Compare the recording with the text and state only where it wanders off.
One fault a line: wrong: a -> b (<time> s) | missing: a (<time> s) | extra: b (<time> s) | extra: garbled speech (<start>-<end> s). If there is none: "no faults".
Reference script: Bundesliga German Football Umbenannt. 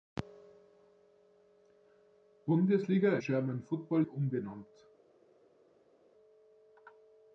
no faults